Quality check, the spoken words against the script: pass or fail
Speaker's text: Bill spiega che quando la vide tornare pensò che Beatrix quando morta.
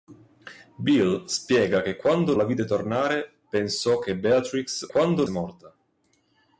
pass